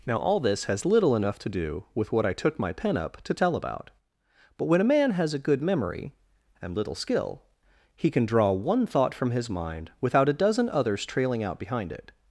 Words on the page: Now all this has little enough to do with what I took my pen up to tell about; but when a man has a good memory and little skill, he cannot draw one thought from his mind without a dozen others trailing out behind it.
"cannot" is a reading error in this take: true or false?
true